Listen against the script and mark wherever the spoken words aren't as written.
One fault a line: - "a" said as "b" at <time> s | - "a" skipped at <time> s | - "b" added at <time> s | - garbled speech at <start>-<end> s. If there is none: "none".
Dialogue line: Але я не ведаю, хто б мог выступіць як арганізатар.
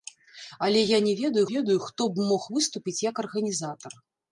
- "ведаю" added at 1.5 s